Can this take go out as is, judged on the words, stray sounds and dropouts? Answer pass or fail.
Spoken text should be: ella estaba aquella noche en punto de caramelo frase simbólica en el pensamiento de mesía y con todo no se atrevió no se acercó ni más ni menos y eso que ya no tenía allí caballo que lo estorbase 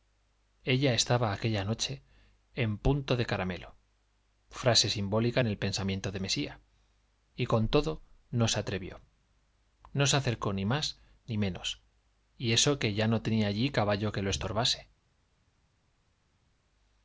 pass